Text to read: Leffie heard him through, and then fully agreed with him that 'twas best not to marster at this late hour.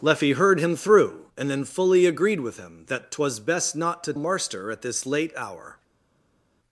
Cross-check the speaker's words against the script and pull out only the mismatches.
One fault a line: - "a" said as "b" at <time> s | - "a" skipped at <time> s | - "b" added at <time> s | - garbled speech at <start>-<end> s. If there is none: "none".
none